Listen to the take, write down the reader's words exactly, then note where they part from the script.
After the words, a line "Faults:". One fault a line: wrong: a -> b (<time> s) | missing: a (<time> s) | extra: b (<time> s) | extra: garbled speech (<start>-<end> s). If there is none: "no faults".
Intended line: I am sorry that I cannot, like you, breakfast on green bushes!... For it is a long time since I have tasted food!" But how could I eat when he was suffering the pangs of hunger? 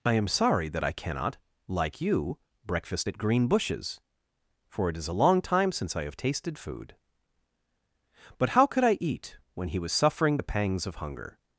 I am sorry that I cannot, like you, breakfast at green bushes!... For it is a long time since I have tasted food!" But how could I eat when he was suffering the pangs of hunger?
Faults:
wrong: on -> at (3.1 s)